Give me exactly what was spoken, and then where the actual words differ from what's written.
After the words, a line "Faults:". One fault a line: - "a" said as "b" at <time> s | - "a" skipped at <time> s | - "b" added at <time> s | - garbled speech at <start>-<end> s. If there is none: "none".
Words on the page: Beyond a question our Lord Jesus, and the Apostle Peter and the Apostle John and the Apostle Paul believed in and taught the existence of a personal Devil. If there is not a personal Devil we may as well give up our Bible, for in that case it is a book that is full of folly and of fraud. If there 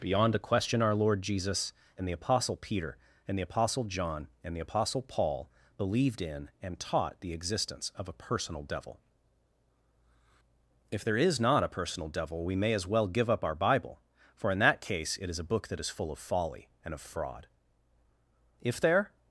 Beyond a question our Lord Jesus, and the Apostle Peter and the Apostle John and the Apostle Paul believed in and taught the existence of a personal Devil. If there is not a personal Devil we may as well give up our Bible, for in that case it is a book that is full of folly and of fraud. If there
Faults:
none